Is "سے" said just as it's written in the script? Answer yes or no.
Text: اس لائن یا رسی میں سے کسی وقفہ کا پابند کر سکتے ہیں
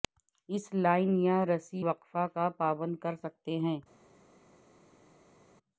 no